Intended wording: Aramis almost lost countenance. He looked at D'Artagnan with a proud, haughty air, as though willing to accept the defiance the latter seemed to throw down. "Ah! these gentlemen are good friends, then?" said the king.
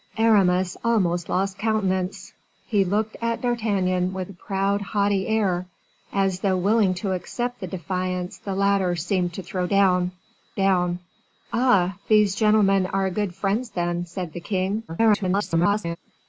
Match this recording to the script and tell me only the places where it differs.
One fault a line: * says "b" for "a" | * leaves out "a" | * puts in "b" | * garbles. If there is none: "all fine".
* puts in "down"
* garbles